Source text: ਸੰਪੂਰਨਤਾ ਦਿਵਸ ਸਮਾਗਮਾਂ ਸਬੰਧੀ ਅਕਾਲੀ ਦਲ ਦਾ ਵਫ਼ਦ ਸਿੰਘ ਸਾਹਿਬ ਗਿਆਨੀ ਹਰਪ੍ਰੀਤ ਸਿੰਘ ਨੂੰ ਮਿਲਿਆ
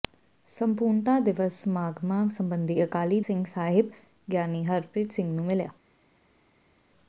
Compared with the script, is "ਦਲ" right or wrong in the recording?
wrong